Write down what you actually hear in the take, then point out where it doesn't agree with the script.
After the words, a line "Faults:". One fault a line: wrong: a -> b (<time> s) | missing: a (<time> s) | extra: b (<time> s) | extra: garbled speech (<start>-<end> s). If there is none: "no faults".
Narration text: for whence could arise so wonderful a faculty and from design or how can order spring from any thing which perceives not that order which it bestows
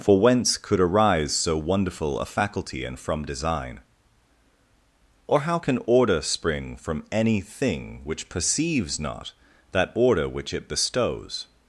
for whence could arise so wonderful a faculty and from design or how can order spring from any thing which perceives not that order which it bestows
Faults:
no faults